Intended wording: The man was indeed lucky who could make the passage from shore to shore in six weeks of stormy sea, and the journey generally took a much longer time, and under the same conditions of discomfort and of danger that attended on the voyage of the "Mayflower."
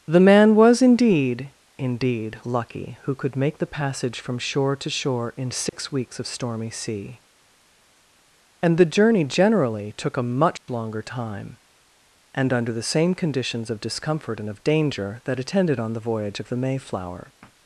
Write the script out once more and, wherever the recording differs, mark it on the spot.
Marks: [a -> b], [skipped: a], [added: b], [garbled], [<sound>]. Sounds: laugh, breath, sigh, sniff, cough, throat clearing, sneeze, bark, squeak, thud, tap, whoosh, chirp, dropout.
The man was indeed [added: indeed] lucky who could make the passage from shore to shore in six [dropout] weeks of stormy sea, and the journey generally took a much [dropout] longer time, and under the same conditions of discomfort and of danger that attended on the voyage of the "Mayflower."